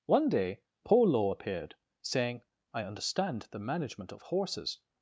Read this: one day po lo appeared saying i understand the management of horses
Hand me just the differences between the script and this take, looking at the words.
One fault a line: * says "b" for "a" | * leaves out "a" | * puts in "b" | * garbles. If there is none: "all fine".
all fine